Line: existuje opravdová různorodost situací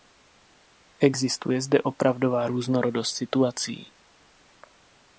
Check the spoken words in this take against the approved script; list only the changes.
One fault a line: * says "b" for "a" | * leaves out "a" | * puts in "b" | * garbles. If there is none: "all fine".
* puts in "zde"